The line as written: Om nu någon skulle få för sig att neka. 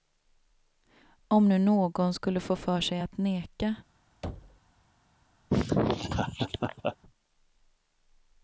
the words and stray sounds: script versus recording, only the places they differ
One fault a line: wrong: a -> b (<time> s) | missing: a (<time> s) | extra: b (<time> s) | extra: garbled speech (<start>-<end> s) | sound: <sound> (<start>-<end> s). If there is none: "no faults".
sound: thud (4.2-4.6 s)
sound: laugh (5.5-7.0 s)